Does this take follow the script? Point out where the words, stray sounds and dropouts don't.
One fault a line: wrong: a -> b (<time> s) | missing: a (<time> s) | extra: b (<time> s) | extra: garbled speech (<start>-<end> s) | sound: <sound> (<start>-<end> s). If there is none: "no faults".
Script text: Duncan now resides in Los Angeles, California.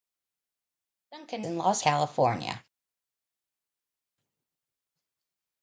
missing: now resides (1.4 s)
missing: Angeles (1.8 s)